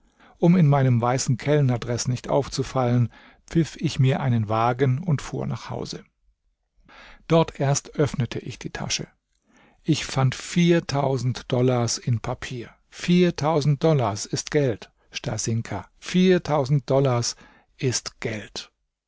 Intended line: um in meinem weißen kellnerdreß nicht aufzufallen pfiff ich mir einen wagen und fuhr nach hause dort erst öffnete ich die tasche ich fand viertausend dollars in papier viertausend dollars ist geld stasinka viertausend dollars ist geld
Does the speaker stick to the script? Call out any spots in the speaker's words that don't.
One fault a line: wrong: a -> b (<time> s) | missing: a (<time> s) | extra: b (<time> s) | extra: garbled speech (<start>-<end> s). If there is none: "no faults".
no faults